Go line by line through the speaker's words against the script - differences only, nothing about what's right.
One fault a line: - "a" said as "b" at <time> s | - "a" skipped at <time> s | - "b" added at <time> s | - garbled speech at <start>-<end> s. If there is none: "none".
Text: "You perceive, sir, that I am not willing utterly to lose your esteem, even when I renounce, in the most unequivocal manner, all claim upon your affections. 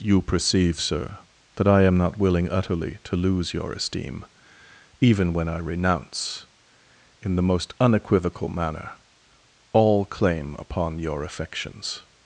none